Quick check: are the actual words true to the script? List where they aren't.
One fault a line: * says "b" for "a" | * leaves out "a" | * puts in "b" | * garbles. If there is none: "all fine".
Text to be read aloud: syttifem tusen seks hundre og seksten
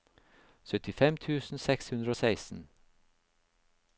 all fine